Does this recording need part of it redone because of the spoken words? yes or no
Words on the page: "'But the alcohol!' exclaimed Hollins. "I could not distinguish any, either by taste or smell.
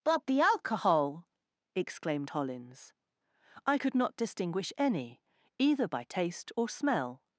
no